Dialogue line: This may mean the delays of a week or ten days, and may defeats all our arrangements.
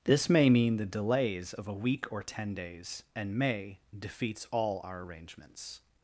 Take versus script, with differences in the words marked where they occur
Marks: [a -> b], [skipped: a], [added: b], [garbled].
This may mean the delays of a week or ten days, and may defeats all our arrangements.